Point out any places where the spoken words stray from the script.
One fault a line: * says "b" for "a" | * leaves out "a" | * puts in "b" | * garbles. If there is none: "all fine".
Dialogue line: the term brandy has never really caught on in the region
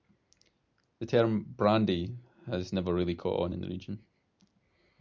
all fine